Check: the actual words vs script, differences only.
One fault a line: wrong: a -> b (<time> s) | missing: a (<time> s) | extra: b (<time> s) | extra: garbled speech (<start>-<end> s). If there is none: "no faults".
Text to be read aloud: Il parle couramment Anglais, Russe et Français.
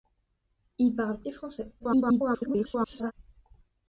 missing: couramment Anglais Russe (1.2 s)
extra: garbled speech (1.8-3.1 s)